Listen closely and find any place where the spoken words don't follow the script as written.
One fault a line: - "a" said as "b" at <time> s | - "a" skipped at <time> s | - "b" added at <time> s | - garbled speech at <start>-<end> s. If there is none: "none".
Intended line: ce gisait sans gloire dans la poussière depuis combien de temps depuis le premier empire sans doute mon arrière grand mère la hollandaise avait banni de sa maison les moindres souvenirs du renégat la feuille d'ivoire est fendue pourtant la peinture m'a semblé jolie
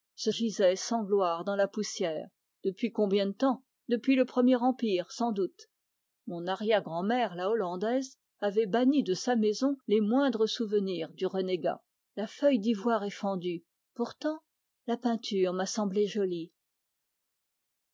none